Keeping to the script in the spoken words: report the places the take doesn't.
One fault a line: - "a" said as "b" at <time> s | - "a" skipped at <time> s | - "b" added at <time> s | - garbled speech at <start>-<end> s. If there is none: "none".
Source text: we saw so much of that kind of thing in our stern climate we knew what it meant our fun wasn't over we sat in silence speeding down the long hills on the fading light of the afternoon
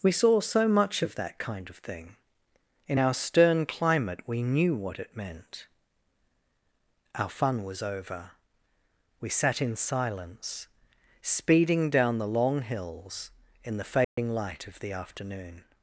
- "wasn't" said as "was" at 7.6 s
- "on" said as "in" at 13.6 s